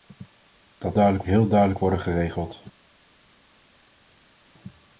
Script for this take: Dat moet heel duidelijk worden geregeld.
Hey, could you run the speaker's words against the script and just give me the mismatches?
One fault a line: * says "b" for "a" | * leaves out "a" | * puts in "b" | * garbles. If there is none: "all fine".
* says "duidelijk" for "moet"